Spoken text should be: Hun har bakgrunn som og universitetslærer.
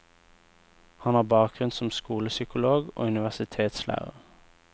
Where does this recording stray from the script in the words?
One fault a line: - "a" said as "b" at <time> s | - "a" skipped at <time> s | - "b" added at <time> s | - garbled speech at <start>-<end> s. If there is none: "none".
- "Hun" said as "Han" at 1.0 s
- "skolepsykolog" added at 1.9 s